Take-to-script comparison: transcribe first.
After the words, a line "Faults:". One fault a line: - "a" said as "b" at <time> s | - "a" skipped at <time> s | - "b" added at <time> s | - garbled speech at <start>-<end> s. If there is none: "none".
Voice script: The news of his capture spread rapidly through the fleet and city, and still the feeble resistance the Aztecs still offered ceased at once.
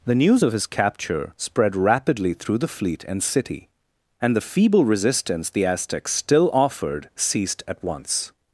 The news of his capture spread rapidly through the fleet and city, and the feeble resistance the Aztecs still offered ceased at once.
Faults:
- "still" skipped at 4.3 s